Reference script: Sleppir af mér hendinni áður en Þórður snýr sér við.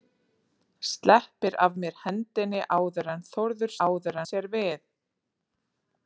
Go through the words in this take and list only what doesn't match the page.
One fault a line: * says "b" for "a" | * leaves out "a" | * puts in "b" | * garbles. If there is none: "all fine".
* says "áður" for "snýr"